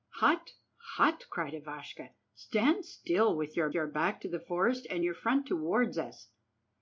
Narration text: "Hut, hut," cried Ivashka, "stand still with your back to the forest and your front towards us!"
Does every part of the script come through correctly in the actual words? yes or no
no